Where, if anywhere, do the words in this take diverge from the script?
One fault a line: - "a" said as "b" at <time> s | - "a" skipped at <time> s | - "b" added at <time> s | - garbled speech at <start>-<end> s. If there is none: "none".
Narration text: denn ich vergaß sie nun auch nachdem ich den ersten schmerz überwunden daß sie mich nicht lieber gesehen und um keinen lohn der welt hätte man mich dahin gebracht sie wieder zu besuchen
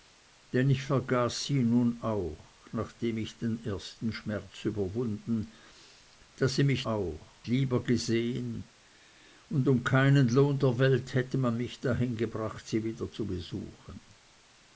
- "nicht" said as "auch" at 6.8 s